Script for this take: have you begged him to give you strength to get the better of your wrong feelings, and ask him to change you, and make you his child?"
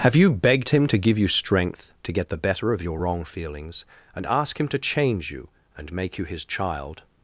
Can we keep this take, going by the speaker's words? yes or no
yes